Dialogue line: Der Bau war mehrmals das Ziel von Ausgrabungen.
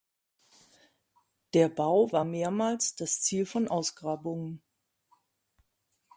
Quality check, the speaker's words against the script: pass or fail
pass